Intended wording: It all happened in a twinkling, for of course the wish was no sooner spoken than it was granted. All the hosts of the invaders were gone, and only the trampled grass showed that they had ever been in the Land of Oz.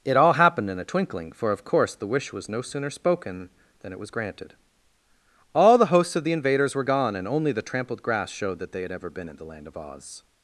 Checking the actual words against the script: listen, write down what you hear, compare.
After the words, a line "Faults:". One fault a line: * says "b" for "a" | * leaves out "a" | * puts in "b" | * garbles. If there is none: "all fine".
It all happened in a twinkling, for of course the wish was no sooner spoken than it was granted. All the hosts of the invaders were gone, and only the trampled grass showed that they had ever been in the Land of Oz.
Faults:
all fine